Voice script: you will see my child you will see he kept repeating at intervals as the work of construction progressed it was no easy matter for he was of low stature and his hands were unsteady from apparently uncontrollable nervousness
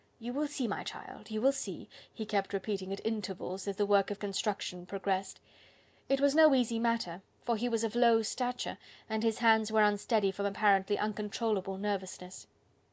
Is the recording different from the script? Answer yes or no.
no